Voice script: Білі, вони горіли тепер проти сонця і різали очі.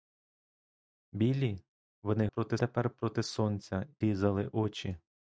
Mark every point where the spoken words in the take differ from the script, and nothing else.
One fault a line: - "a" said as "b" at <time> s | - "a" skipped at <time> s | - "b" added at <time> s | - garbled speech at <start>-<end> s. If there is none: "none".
- "горіли" said as "проти" at 2.2 s
- "і" skipped at 3.9 s